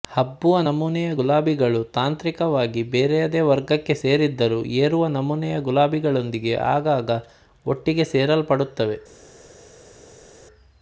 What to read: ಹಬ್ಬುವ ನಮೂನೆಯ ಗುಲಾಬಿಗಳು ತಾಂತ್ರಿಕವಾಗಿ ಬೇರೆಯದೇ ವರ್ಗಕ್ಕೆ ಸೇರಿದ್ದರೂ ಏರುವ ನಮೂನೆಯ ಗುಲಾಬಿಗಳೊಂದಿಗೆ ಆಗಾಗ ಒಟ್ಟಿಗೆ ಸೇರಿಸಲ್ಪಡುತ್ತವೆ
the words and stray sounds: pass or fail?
pass